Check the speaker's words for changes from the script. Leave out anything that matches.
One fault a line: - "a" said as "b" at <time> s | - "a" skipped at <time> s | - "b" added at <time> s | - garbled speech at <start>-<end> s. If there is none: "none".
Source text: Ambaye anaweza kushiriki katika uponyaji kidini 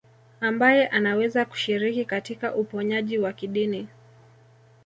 - "wa" added at 3.2 s